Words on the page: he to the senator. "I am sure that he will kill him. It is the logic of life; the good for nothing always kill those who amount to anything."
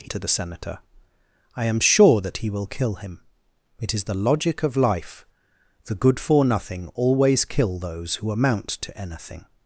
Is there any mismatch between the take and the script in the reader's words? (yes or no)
no